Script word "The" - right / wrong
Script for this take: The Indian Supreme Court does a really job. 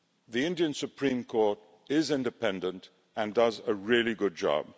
right